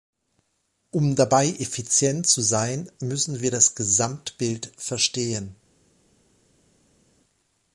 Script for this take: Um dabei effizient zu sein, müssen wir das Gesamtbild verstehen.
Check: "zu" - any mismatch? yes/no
no